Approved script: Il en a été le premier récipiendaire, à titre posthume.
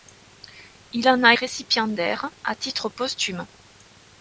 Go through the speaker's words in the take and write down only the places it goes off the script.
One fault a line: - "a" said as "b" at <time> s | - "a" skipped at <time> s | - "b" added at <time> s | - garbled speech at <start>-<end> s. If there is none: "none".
- "été le premier" skipped at 1.4 s